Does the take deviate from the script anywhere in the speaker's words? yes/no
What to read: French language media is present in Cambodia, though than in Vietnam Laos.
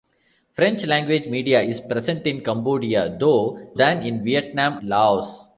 no